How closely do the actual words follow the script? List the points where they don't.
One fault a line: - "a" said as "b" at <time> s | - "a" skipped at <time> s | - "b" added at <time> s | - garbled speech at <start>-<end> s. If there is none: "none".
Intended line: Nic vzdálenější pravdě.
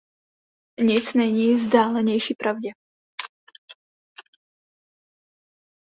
- "není" added at 1.1 s